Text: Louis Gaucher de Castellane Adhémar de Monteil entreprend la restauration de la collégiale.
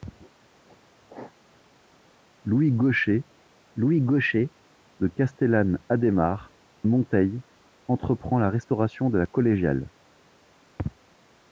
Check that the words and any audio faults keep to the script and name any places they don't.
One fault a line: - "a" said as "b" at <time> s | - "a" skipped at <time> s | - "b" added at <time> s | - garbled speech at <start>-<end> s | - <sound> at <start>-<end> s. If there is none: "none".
- "louis Gaucher" added at 3.8 s
- "de" skipped at 6.5 s